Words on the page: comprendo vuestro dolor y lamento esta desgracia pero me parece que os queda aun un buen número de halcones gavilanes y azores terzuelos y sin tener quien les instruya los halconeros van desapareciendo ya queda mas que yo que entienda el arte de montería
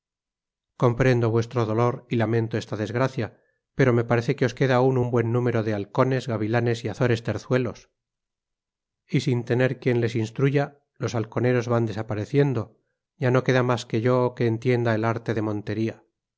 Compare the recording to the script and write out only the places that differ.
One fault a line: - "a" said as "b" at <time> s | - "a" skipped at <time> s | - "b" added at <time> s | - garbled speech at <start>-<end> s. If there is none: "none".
- "no" added at 13.3 s